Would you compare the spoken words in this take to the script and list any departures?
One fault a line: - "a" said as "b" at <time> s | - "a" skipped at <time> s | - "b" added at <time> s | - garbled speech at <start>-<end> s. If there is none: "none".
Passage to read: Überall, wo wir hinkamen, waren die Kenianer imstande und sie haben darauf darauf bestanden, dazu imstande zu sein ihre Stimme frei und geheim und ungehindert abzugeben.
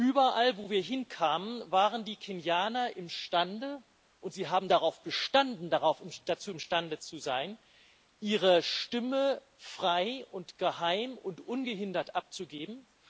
- "darauf" skipped at 5.0 s